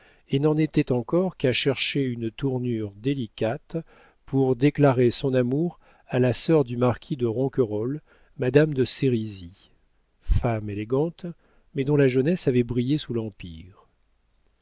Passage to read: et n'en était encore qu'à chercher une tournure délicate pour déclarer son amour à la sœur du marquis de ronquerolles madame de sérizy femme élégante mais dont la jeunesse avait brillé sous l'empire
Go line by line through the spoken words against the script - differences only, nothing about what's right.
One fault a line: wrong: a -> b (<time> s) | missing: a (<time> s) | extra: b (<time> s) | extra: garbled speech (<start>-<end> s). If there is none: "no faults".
no faults